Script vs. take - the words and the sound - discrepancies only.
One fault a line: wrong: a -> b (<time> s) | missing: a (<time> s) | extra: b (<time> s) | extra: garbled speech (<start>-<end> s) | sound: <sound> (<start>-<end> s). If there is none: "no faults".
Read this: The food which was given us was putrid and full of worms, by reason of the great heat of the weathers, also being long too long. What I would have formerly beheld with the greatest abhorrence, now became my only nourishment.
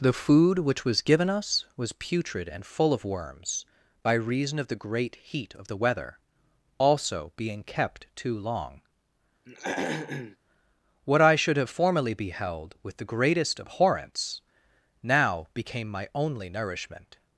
wrong: weathers -> weather (5.8 s)
wrong: long -> kept (7.6 s)
sound: throat clearing (9.4-10.4 s)
wrong: would -> should (11.3 s)